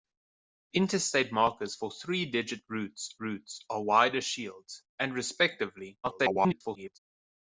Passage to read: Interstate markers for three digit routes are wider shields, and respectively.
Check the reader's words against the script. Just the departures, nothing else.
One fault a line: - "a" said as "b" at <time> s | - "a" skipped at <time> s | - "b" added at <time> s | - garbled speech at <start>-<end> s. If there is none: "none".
- "routes" added at 3.2 s
- garbled speech at 6.0-7.0 s